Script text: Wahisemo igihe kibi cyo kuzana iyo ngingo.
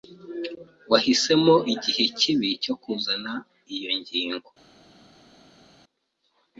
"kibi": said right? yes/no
yes